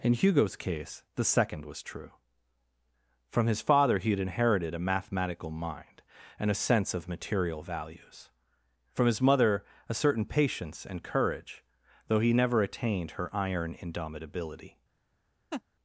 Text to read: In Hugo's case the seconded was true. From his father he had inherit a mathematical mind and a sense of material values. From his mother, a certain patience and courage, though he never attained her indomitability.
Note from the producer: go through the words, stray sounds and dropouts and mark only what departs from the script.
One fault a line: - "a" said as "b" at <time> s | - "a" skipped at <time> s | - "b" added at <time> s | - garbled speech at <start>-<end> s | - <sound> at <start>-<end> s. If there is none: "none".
- "seconded" said as "second" at 1.2 s
- "inherit" said as "inherited" at 4.2 s
- "iron" added at 13.3 s
- laugh at 15.5-15.6 s